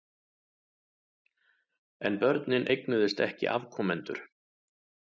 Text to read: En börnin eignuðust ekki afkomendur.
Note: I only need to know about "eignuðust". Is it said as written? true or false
true